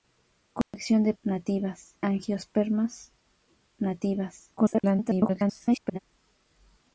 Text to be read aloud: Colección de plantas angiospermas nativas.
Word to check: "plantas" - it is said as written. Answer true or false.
false